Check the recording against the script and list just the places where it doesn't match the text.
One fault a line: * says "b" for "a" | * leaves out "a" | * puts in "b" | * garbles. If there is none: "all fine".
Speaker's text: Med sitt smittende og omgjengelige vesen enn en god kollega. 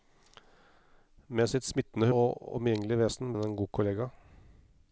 all fine